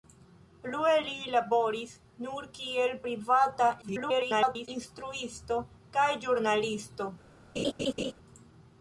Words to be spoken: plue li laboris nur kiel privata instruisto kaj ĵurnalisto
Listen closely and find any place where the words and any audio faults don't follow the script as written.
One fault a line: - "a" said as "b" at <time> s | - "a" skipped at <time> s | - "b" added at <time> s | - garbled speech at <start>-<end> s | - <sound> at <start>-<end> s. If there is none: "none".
- garbled speech at 3.8-4.7 s
- laugh at 7.6-8.1 s